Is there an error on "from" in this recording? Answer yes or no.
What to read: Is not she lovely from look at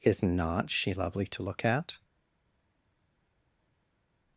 yes